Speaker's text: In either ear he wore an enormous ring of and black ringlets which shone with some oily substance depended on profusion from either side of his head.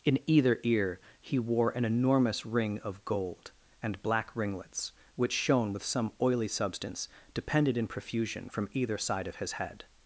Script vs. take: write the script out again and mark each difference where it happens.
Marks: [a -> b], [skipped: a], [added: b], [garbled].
In either ear he wore an enormous ring of [added: gold] and black ringlets which shone with some oily substance depended [on -> in] profusion from either side of his head.